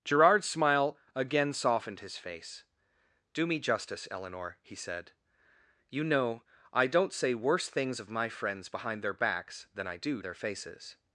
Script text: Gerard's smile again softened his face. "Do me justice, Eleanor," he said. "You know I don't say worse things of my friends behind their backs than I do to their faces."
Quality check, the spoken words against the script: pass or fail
fail